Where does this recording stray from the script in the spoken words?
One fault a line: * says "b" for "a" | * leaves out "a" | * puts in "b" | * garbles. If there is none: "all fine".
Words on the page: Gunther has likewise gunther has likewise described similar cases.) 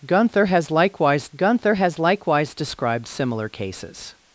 all fine